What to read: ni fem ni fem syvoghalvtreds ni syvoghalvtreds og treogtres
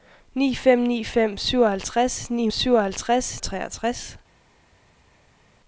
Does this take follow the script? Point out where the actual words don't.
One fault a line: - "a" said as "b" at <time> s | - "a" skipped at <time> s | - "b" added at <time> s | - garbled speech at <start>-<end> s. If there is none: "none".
none